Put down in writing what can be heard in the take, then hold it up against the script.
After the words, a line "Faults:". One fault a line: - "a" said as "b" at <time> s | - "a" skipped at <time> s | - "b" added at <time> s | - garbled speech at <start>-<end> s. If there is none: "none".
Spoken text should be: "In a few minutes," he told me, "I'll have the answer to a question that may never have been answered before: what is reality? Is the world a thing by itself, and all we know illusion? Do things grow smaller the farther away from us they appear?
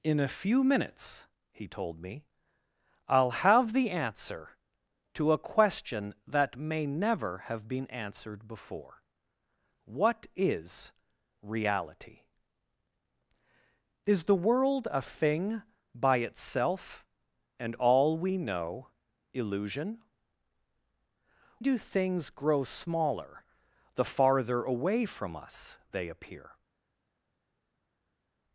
"In a few minutes," he told me, "I'll have the answer to a question that may never have been answered before: what is reality? Is the world a thing by itself, and all we know illusion? Do things grow smaller the farther away from us they appear?
Faults:
none